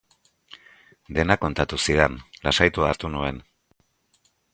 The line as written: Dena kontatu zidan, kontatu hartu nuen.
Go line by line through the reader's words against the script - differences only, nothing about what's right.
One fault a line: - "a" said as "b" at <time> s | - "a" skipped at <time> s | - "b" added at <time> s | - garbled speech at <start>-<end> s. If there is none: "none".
- "kontatu" said as "lasaitua" at 2.5 s